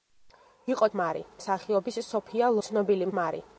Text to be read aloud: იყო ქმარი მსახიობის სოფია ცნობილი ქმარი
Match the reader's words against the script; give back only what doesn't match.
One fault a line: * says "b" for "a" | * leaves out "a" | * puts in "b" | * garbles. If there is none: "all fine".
all fine